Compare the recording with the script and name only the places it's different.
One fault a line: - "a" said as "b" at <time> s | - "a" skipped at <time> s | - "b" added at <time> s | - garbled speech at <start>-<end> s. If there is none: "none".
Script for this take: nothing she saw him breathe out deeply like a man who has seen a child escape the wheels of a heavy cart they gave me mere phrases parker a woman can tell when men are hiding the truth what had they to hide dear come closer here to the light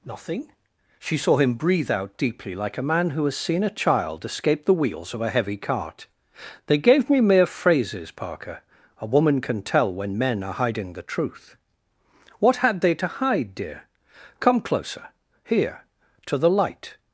none